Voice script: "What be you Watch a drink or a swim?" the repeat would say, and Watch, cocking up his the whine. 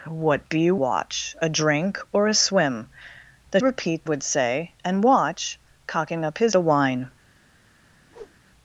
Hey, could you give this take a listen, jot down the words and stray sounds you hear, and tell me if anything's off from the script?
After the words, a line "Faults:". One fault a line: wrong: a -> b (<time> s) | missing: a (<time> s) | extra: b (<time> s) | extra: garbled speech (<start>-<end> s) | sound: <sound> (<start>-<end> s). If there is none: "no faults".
"What be you Watch a drink or a swim?" the repeat would say, and Watch, cocking up his the whine.
Faults:
sound: whoosh (8.1-8.4 s)